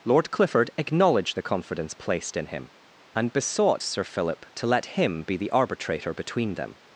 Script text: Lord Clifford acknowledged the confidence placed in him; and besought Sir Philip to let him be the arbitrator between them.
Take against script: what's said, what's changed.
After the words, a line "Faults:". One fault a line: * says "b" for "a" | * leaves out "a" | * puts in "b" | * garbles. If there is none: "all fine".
Lord Clifford acknowledged the confidence placed in him; and besought Sir Philip to let him be the arbitrator between them.
Faults:
all fine